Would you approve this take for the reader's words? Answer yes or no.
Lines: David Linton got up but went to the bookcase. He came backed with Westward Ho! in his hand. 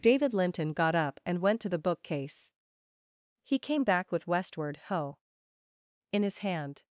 no